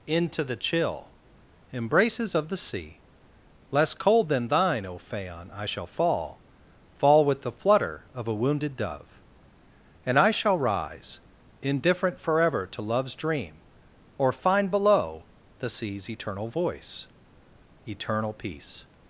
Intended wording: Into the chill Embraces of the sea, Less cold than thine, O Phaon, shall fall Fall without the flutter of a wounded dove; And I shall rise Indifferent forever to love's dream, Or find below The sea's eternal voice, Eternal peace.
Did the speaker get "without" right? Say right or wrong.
wrong